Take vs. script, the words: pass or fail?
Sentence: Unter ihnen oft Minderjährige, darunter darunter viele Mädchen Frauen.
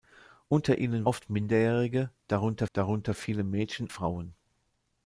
pass